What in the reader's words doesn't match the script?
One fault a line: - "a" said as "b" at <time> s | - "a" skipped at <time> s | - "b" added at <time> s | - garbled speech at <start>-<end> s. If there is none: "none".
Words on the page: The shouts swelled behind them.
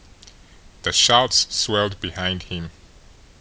- "them" said as "him" at 2.4 s